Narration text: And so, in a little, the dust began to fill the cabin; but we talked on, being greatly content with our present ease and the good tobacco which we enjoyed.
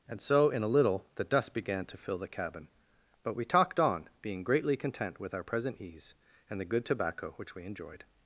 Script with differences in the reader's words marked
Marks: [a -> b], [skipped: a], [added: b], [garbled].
And so, in a little, the dust began to fill the cabin; but we talked on, being greatly content with our present ease and the good tobacco which we enjoyed.